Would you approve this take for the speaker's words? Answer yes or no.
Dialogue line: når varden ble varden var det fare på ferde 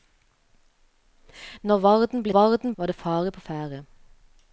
yes